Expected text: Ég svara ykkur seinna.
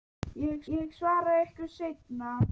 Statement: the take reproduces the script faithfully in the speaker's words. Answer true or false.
false